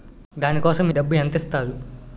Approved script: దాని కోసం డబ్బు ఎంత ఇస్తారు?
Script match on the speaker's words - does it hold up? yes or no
yes